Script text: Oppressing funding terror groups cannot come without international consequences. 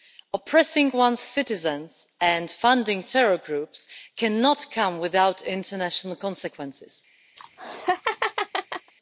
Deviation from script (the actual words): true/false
true